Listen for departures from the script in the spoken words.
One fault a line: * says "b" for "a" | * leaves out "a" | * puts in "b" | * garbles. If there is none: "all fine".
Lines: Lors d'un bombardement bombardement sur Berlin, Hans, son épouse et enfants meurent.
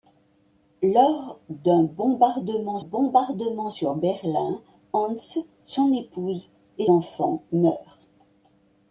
all fine